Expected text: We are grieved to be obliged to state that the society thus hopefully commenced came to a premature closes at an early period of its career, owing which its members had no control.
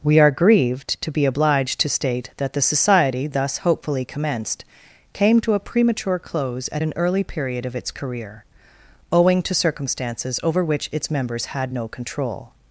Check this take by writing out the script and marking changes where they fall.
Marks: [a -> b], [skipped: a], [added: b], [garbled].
We are grieved to be obliged to state that the society thus hopefully commenced came to a premature [closes -> close] at an early period of its career, owing [added: to circumstances over] which its members had no control.